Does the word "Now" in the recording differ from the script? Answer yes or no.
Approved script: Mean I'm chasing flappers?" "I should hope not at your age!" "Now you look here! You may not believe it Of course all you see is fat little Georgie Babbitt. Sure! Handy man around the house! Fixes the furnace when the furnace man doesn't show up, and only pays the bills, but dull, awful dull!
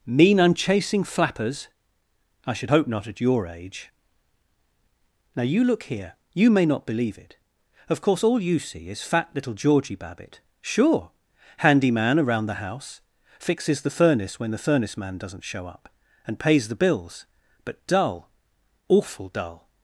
no